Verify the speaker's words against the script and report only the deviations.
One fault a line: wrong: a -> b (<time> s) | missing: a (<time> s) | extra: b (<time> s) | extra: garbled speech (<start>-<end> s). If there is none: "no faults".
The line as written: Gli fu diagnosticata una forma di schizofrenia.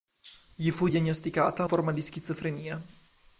missing: una (1.6 s)